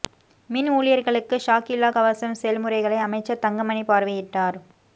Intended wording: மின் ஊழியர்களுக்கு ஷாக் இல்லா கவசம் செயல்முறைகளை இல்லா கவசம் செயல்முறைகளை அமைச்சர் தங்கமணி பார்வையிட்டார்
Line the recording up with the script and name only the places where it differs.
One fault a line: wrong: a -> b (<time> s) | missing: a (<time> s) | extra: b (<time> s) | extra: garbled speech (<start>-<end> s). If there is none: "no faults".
missing: இல்லா கவசம் செயல்முறைகளை (3.0 s)